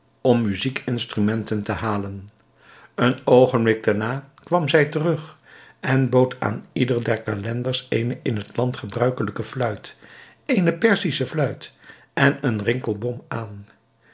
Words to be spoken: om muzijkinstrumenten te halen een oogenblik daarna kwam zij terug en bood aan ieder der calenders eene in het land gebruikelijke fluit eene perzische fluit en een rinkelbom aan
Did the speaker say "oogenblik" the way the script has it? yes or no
yes